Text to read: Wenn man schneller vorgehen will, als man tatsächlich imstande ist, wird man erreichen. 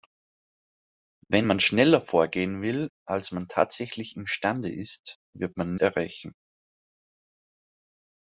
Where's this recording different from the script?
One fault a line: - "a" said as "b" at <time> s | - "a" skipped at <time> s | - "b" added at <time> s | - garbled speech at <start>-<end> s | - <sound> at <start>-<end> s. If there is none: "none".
none